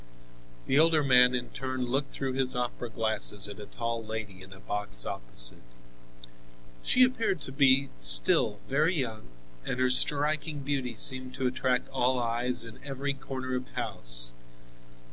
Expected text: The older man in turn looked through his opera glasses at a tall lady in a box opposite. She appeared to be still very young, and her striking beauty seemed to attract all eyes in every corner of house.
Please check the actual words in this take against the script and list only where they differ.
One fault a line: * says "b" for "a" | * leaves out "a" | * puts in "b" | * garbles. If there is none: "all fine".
all fine